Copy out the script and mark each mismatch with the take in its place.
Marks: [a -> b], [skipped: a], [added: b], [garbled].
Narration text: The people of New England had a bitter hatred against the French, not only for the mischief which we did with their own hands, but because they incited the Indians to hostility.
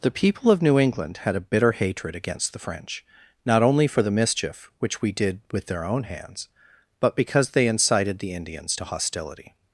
The people of New England had a bitter hatred against the French, not only for the mischief which we did with their own hands, but because they incited the Indians to hostility.